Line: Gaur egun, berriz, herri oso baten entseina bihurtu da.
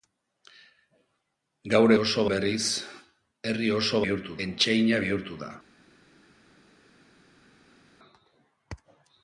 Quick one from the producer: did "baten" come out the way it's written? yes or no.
no